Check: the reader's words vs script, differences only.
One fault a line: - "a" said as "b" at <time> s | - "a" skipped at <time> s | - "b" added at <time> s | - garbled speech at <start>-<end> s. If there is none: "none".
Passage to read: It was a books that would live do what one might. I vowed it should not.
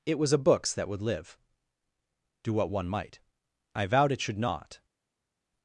none